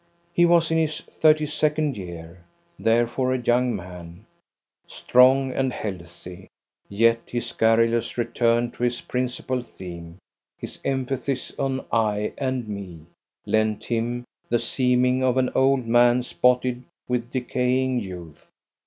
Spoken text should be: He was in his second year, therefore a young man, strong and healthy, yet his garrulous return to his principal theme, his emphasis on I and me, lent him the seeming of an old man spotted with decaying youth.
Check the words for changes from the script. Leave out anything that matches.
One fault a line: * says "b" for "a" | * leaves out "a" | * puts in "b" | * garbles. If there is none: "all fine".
* puts in "thirty"